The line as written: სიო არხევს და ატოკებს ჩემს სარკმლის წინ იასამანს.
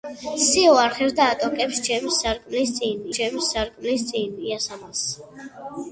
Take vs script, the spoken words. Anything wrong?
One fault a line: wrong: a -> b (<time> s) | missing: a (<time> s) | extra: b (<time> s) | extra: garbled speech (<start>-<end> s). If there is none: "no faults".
extra: ჩემს სარკმლის წინ (3.2 s)